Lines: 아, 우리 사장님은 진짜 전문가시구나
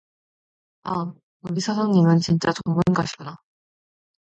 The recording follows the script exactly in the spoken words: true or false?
true